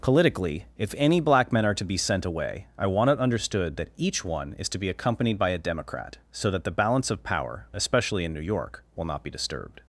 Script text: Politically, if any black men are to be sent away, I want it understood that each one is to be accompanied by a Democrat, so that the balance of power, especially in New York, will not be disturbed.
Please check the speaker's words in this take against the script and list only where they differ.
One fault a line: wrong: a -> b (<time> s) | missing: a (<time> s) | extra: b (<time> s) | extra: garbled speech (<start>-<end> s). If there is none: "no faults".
no faults